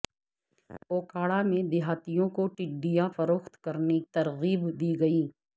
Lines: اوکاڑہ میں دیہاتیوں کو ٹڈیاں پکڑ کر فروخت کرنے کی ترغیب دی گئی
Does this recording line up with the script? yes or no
no